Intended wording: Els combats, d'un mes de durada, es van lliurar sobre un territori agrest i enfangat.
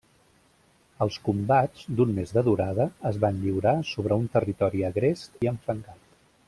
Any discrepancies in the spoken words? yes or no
no